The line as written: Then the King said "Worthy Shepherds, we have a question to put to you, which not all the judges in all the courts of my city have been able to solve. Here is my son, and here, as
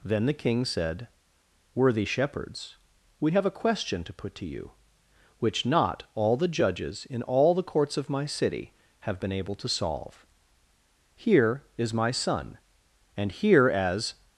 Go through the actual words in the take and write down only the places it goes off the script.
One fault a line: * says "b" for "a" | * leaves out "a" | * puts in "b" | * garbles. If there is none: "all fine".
all fine